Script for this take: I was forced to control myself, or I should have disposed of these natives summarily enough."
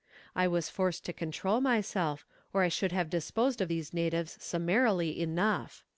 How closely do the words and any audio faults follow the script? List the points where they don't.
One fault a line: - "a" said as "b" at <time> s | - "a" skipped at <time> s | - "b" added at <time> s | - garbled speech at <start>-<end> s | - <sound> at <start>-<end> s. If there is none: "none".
none